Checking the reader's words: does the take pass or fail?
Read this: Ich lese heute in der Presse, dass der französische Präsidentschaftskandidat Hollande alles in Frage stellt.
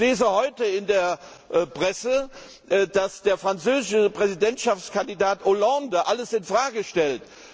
pass